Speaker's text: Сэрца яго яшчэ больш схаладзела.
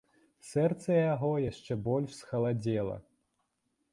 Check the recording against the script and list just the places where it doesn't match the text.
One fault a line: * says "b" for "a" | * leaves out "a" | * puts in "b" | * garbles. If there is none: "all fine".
all fine